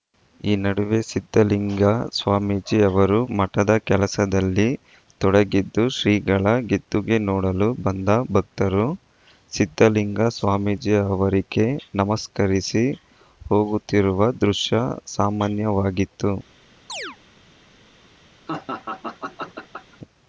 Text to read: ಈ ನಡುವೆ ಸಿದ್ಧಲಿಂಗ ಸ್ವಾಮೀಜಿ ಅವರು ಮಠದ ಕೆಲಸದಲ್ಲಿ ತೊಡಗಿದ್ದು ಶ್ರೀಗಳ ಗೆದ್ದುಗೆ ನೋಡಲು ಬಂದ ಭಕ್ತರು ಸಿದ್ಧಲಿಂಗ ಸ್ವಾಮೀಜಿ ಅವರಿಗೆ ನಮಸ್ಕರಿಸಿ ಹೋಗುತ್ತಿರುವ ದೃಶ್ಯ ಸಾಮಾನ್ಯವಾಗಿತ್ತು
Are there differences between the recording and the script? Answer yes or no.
no